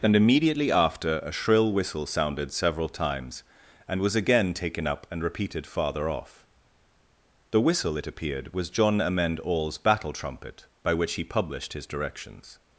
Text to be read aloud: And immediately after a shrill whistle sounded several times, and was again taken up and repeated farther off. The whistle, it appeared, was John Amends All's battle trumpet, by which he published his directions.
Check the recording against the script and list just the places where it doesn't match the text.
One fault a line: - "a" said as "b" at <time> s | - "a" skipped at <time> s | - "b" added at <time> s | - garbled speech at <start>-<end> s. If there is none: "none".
- "Amends" said as "Amend" at 9.0 s